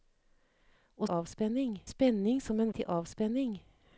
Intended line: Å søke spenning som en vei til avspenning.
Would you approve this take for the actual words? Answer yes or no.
no